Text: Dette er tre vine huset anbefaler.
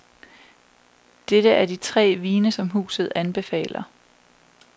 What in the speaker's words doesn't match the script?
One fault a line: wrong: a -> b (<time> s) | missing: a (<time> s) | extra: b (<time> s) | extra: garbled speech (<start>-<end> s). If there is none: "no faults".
extra: de (1.6 s)
extra: som (2.5 s)